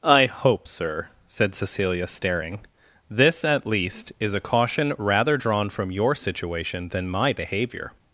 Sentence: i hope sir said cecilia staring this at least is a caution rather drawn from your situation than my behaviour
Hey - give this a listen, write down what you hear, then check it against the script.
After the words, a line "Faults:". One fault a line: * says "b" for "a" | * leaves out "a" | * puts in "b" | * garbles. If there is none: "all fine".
i hope sir said cecilia staring this at least is a caution rather drawn from your situation than my behaviour
Faults:
all fine